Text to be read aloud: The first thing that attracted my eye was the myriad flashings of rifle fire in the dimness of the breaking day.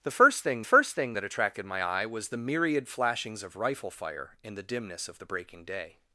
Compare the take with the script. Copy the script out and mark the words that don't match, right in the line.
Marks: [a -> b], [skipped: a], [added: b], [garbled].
The first thing [added: first thing] that attracted my eye was the myriad flashings of rifle fire in the dimness of the breaking day.